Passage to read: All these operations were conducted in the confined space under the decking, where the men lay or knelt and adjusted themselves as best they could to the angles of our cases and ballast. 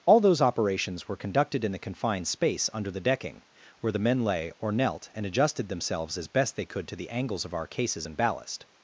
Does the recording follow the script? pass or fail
fail